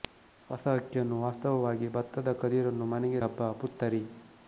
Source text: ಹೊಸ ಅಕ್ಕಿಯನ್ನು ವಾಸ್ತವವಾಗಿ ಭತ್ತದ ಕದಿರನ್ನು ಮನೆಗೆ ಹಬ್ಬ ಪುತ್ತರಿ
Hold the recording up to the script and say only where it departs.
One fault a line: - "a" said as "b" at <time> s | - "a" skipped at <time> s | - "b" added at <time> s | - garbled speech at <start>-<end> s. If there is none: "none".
none